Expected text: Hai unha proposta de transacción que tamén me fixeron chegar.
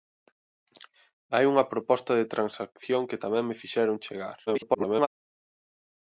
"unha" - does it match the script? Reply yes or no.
yes